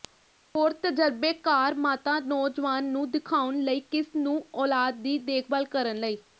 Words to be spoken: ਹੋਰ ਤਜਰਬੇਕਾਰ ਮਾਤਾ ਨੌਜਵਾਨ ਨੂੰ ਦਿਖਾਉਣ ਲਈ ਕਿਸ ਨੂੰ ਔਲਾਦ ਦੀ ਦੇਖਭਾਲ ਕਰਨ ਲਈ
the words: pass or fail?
pass